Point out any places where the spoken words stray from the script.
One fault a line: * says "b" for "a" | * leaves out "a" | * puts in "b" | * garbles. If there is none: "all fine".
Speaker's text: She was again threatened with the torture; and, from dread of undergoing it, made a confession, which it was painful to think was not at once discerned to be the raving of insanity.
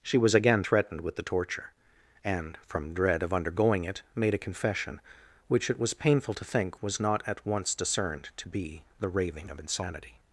all fine